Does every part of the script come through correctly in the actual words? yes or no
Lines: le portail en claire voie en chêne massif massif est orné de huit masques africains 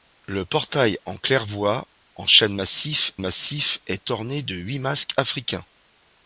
yes